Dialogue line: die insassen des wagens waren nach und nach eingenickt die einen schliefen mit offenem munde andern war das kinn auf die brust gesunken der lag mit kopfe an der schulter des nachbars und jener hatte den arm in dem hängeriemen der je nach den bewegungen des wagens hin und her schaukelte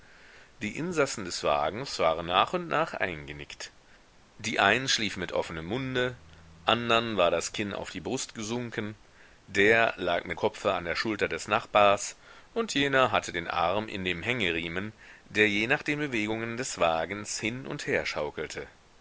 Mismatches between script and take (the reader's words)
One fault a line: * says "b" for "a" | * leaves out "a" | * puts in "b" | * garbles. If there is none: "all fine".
all fine